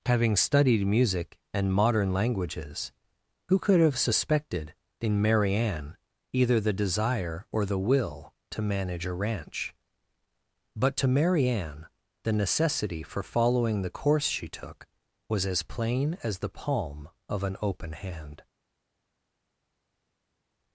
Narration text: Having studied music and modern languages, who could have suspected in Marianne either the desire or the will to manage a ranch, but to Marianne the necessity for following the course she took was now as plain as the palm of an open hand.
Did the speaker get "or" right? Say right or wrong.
right